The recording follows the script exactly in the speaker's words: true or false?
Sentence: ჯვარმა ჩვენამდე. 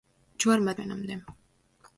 true